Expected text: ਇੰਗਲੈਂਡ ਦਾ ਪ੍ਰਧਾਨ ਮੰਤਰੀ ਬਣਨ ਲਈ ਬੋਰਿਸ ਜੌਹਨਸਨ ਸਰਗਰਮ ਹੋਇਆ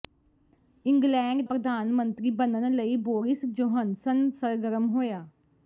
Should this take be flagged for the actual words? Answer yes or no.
yes